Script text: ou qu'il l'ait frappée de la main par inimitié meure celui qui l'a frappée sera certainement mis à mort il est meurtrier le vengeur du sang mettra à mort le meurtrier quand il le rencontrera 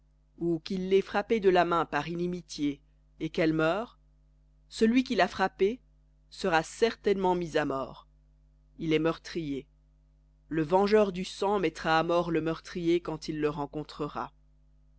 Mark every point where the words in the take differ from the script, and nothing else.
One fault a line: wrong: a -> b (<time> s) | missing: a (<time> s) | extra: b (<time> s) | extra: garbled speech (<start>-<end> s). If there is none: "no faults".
extra: et qu'elle (3.2 s)